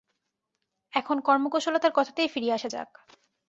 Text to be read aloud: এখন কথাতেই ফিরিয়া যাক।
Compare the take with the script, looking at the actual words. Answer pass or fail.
fail